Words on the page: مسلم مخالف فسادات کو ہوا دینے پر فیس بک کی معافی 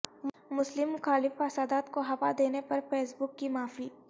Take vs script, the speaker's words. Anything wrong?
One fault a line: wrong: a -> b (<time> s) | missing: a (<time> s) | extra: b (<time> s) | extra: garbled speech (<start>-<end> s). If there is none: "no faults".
no faults